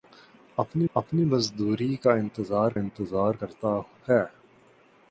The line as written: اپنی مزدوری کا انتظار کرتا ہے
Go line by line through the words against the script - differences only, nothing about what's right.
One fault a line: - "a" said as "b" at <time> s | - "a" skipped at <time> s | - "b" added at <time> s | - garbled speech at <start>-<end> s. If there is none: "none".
- "اپنی" added at 0.9 s
- "انتظار" added at 2.7 s